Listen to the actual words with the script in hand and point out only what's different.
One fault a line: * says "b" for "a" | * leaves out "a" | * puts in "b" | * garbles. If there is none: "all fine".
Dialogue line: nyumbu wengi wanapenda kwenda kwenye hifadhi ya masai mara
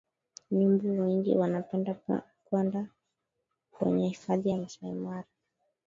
all fine